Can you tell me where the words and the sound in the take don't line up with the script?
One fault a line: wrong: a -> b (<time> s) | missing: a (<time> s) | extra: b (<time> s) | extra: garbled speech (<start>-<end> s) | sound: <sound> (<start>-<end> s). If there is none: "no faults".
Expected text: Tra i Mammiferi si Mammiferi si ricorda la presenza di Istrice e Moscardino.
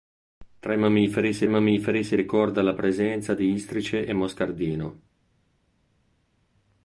no faults